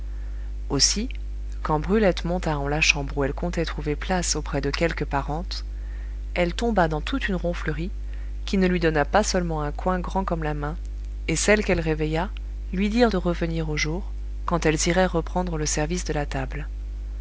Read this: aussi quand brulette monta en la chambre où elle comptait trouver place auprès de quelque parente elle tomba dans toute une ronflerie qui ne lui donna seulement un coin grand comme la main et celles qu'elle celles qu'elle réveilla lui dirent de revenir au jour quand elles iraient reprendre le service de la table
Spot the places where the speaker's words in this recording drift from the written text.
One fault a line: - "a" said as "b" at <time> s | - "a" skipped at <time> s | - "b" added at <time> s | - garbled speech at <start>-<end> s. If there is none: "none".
- "pas" added at 9.0 s
- "celles qu'elle" skipped at 11.8 s